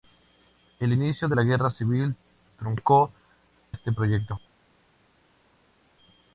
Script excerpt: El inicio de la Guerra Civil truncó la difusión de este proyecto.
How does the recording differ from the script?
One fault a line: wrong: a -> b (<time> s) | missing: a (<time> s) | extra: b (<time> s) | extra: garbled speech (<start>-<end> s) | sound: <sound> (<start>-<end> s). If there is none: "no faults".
missing: la difusión de (3.1 s)